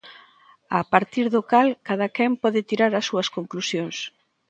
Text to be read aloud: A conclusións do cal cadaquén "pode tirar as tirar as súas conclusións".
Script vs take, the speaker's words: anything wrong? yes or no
yes